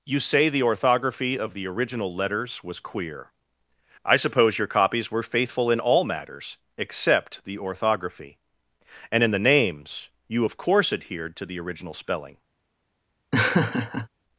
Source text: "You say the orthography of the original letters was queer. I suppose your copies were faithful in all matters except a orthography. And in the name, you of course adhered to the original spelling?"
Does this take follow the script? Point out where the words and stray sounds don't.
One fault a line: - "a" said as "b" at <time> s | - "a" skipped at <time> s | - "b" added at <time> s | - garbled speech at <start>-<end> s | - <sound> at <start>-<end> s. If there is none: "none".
- "a" said as "the" at 7.5 s
- "name" said as "names" at 9.4 s
- laugh at 13.3-14.1 s